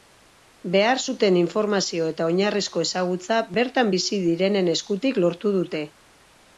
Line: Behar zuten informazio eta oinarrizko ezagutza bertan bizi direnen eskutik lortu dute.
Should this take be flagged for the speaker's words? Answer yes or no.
no